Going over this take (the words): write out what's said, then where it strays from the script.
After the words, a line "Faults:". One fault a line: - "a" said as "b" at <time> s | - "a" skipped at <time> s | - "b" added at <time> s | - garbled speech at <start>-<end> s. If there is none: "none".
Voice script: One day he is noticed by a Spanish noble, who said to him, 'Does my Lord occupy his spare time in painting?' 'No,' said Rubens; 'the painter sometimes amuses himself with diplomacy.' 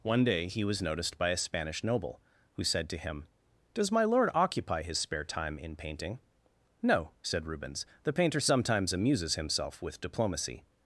One day he was noticed by a Spanish noble, who said to him, 'Does my Lord occupy his spare time in painting?' 'No,' said Rubens; 'the painter sometimes amuses himself with diplomacy.'
Faults:
- "is" said as "was" at 0.6 s